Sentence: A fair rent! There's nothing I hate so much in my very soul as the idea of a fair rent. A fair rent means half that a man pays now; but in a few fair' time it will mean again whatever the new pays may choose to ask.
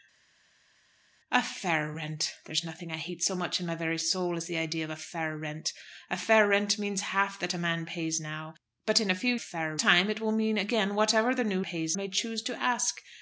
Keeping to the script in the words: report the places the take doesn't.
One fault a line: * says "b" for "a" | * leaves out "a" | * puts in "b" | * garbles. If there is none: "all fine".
all fine